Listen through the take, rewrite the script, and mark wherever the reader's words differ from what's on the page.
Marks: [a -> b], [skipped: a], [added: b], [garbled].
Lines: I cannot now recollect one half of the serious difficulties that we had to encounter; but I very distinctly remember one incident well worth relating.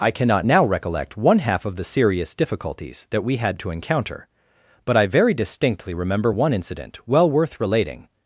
I cannot now recollect one half of the serious difficulties that we had to encounter; but I very distinctly remember one incident well worth relating.